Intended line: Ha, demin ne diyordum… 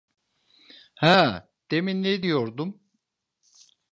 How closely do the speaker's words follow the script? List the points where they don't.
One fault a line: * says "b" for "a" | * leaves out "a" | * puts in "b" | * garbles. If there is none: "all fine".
all fine